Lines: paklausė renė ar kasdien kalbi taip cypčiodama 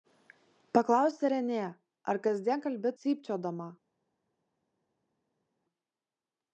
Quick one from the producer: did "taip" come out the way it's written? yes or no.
no